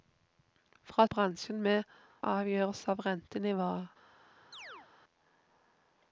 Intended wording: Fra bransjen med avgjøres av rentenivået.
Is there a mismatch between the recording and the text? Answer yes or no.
no